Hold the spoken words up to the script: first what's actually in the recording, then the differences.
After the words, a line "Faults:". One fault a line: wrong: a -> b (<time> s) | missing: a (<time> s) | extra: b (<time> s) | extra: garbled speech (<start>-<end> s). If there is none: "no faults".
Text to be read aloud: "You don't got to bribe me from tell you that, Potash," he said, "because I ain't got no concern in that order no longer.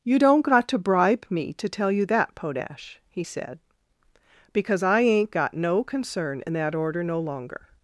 "You don't got to bribe me to tell you that, Potash," he said, "because I ain't got no concern in that order no longer.
Faults:
wrong: from -> to (1.5 s)